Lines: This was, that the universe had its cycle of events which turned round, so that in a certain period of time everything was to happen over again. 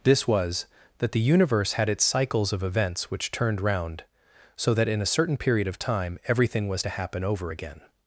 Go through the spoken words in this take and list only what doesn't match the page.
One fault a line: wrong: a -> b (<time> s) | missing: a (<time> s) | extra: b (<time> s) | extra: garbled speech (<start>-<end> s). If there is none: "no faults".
wrong: cycle -> cycles (2.0 s)